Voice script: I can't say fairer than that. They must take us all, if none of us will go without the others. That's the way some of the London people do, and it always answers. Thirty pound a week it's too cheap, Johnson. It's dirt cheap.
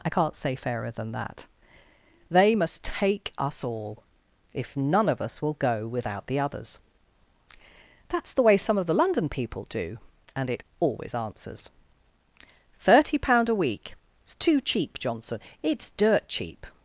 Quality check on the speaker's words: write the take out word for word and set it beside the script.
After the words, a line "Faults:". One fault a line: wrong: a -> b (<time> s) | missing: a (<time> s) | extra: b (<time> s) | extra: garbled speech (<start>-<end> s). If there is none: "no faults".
I can't say fairer than that. They must take us all, if none of us will go without the others. That's the way some of the London people do, and it always answers. Thirty pound a week it's too cheap, Johnson. It's dirt cheap.
Faults:
no faults